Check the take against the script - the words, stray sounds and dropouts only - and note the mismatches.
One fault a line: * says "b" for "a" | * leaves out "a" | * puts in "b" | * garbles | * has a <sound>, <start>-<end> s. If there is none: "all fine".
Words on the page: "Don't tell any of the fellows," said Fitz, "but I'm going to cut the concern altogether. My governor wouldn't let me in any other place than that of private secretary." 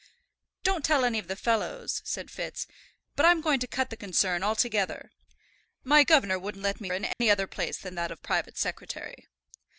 * has a dropout, 7.1-7.2 s